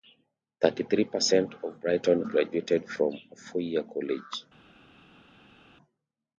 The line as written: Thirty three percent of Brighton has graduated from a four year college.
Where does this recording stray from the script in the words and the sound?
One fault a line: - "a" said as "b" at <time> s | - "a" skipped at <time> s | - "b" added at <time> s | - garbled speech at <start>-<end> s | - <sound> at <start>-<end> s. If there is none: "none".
- "has" skipped at 2.2 s